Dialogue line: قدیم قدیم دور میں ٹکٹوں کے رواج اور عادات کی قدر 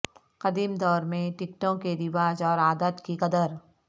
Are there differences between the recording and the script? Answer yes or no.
yes